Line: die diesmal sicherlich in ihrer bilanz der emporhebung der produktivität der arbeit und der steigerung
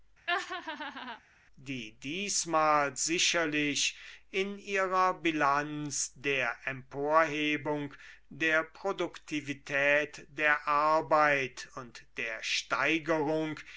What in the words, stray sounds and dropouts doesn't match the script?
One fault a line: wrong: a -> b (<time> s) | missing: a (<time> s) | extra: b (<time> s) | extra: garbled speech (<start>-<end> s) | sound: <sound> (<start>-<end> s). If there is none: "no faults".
sound: laugh (0.3-1.2 s)